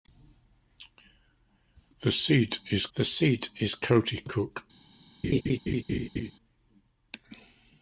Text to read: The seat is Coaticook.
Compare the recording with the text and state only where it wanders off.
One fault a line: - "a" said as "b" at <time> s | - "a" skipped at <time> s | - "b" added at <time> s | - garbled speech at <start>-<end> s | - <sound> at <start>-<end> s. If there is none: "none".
- "the seat is" added at 2.9 s
- laugh at 5.2-6.3 s